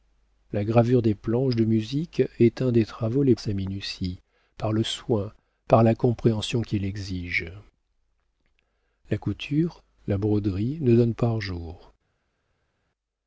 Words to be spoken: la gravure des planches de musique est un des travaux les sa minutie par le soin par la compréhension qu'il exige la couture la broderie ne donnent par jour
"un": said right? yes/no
yes